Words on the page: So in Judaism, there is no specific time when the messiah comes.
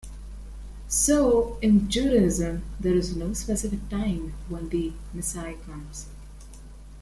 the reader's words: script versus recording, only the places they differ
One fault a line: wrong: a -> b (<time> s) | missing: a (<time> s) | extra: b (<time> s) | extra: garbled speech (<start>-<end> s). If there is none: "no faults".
no faults